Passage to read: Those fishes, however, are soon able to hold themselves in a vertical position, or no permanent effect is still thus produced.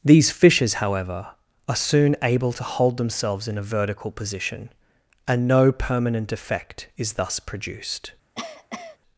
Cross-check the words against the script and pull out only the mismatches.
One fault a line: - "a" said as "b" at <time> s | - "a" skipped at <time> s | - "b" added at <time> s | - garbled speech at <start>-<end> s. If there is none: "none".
- "Those" said as "These" at 0.0 s
- "or" said as "and" at 5.3 s
- "still" skipped at 7.1 s